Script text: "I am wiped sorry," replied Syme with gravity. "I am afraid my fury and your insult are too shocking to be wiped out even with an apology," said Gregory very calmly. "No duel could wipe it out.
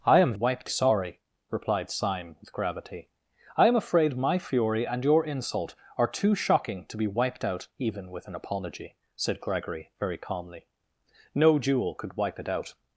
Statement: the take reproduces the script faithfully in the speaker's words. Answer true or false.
true